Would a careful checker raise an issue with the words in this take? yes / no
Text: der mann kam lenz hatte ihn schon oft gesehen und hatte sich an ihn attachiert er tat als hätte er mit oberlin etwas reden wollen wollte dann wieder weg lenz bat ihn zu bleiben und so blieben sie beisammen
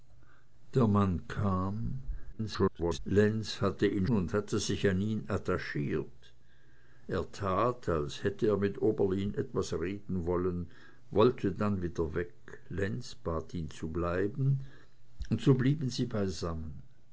yes